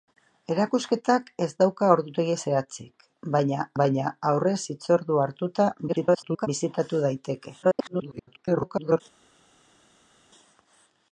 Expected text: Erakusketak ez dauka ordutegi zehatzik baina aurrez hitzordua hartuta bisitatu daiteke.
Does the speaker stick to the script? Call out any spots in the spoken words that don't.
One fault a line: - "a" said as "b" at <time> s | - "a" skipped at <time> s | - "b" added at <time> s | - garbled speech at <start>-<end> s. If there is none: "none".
- "baina" added at 3.8 s
- garbled speech at 5.9-6.5 s
- garbled speech at 7.6-9.0 s